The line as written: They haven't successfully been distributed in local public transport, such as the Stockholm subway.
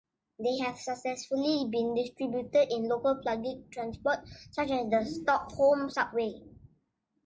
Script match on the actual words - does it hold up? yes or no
no